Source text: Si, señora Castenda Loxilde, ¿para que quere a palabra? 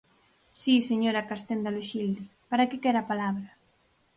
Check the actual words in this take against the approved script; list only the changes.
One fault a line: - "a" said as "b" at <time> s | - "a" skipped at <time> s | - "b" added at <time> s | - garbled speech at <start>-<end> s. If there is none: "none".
none